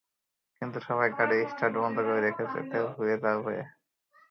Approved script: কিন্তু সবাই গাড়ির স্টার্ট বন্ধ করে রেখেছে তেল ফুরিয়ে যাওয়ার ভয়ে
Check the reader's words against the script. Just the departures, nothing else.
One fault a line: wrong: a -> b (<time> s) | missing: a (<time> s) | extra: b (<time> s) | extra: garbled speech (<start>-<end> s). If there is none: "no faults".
no faults